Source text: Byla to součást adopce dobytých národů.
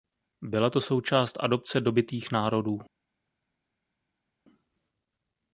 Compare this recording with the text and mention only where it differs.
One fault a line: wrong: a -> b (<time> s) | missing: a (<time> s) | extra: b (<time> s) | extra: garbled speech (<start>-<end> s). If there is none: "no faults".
no faults